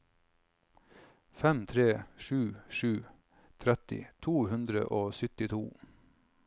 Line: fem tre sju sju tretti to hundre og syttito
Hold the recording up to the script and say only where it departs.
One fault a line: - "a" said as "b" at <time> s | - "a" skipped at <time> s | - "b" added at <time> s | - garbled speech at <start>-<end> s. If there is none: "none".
none